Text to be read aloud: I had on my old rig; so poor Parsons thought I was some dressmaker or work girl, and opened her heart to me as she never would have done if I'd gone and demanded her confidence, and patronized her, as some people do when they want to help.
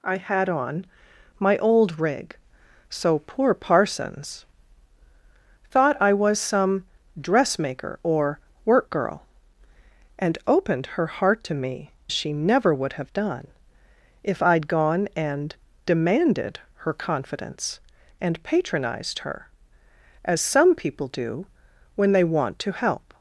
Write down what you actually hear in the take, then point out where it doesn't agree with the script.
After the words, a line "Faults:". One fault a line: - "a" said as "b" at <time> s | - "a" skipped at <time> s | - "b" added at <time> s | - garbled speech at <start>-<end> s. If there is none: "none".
I had on my old rig; so poor Parsons thought I was some dressmaker or work girl, and opened her heart to me she never would have done if I'd gone and demanded her confidence, and patronized her, as some people do when they want to help.
Faults:
- "as" skipped at 11.9 s